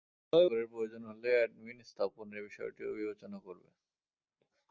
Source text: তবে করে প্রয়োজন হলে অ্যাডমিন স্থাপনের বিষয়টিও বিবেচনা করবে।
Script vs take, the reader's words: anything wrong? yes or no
no